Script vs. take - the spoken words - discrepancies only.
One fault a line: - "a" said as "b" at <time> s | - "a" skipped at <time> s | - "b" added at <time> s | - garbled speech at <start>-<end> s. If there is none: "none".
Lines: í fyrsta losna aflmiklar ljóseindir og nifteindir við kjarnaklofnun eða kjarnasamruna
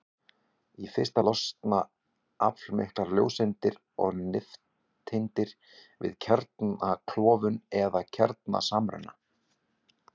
none